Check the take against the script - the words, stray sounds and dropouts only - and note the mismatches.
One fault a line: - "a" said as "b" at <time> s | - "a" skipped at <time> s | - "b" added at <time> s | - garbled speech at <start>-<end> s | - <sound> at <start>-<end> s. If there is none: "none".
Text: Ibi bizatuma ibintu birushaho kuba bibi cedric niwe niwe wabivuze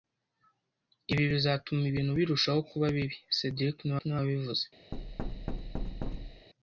- thud at 4.9-6.5 s